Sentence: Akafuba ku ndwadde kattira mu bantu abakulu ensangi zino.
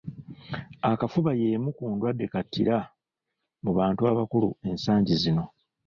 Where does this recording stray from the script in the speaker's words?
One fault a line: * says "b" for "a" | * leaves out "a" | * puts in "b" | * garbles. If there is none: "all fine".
* puts in "y'emu"